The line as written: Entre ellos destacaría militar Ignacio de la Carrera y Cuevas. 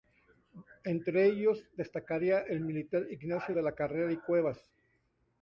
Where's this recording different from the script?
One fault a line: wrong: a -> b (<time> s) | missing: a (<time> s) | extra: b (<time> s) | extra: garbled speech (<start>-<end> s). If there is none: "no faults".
extra: el (2.4 s)